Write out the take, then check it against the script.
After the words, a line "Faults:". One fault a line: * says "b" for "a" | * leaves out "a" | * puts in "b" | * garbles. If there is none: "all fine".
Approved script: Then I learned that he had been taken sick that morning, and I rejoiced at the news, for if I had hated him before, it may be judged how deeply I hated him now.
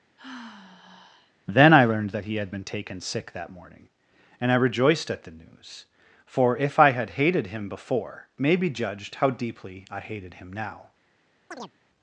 Then I learned that he had been taken sick that morning, and I rejoiced at the news, for if I had hated him before, may be judged how deeply I hated him now.
Faults:
* leaves out "it"